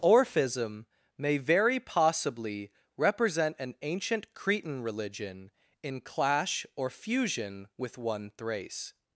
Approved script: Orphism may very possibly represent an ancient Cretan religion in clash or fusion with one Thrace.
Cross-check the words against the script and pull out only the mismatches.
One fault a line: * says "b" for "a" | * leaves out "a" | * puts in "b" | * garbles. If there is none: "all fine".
all fine